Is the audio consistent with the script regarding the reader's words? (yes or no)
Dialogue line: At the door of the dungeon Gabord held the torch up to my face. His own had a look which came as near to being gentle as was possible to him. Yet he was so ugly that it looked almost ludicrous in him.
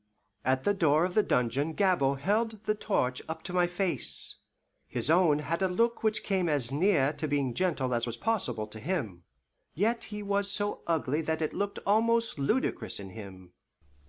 yes